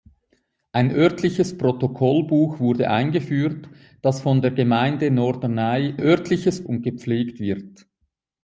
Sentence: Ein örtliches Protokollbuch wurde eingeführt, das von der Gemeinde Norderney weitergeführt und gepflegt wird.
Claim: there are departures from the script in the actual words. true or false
true